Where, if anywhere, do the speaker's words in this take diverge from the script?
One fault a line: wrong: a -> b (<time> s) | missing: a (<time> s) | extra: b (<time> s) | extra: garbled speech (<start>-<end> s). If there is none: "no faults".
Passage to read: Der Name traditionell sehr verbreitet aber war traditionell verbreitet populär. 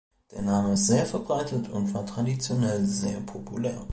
wrong: traditionell -> ist (0.7 s)
wrong: aber -> und (1.7 s)
wrong: verbreitet -> sehr (2.9 s)